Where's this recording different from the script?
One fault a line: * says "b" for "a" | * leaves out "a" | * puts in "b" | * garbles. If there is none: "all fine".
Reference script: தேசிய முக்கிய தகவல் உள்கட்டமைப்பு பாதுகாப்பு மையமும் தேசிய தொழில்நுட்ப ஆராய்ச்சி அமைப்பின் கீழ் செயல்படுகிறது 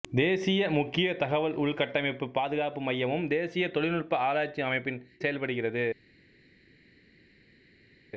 * leaves out "கீழ்"